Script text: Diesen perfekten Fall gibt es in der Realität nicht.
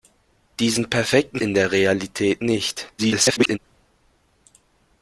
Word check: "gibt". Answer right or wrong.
wrong